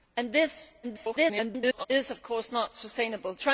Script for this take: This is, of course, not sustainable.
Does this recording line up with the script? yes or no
no